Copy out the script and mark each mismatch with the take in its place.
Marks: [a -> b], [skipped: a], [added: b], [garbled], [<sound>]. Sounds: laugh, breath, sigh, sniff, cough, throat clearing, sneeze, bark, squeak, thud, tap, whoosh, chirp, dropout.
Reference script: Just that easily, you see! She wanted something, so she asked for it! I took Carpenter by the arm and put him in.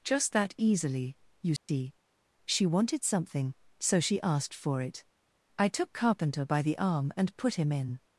Just that easily, you see! [dropout] She wanted something, so she asked for it! I took Carpenter by the arm and put him in.